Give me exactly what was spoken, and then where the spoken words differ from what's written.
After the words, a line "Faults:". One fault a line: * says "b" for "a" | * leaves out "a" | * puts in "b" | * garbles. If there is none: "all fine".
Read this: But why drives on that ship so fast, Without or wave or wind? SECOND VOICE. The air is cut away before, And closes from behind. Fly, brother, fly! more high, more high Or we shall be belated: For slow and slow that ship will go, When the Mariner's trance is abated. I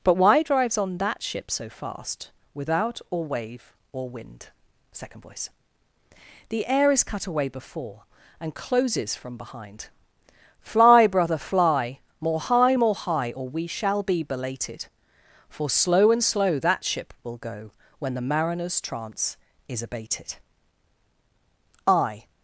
But why drives on that ship so fast, Without or wave or wind? SECOND VOICE. The air is cut away before, And closes from behind. Fly, brother, fly! more high, more high Or we shall be belated: For slow and slow that ship will go, When the Mariner's trance is abated. I
Faults:
all fine